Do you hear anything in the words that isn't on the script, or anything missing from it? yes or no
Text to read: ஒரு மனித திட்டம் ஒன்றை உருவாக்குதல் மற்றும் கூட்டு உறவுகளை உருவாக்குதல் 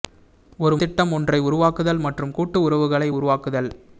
yes